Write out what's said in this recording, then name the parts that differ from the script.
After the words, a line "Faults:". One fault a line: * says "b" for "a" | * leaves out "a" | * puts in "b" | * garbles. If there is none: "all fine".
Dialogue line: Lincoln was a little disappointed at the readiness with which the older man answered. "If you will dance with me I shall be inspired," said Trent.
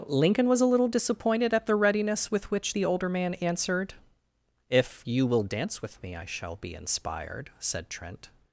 Lincoln was a little disappointed at the readiness with which the older man answered. "If you will dance with me I shall be inspired," said Trent.
Faults:
all fine